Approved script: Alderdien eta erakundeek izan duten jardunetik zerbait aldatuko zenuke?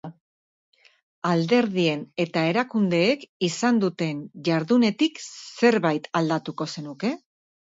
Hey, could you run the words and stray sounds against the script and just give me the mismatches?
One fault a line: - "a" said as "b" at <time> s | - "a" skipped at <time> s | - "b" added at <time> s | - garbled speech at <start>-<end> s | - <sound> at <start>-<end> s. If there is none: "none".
none